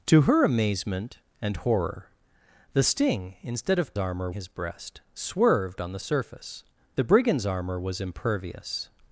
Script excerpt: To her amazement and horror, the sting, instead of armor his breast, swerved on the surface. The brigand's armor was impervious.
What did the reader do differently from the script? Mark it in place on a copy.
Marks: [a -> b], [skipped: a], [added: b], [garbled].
To her amazement and horror, the sting, instead of armor his breast, swerved on the surface. The brigand's armor was impervious.